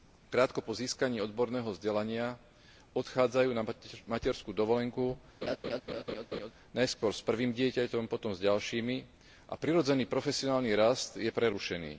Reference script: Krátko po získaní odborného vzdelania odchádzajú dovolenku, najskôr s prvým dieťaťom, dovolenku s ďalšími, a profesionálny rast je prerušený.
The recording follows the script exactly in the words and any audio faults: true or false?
false